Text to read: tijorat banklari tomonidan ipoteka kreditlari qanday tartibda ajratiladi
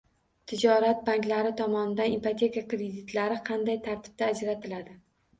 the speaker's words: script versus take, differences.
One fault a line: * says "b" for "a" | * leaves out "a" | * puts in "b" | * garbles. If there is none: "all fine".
all fine